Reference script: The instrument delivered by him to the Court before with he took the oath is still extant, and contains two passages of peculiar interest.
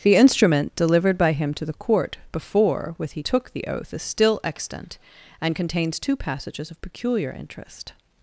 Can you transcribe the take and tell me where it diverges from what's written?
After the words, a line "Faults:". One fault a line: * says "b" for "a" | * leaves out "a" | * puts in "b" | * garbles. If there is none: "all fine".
The instrument delivered by him to the Court before with he took the oath is still extant, and contains two passages of peculiar interest.
Faults:
all fine